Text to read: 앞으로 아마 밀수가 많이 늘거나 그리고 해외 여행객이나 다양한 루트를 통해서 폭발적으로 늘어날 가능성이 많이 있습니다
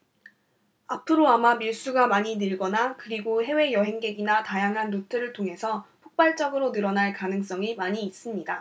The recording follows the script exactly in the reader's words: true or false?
true